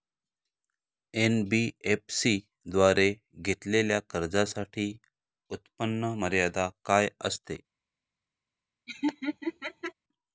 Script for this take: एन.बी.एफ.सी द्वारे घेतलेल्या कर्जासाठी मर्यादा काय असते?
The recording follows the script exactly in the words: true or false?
false